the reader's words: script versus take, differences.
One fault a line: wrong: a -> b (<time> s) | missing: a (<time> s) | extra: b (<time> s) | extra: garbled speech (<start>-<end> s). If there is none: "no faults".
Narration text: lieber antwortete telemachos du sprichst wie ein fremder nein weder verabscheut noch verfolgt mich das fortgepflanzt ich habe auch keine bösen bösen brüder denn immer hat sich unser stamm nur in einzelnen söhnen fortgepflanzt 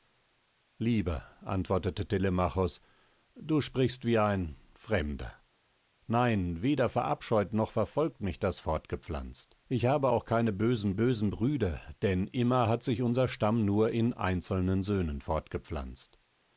no faults